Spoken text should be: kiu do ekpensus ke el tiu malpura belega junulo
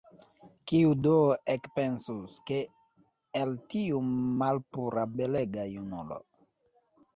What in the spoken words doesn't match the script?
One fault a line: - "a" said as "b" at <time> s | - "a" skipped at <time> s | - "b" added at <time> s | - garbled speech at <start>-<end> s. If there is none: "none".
none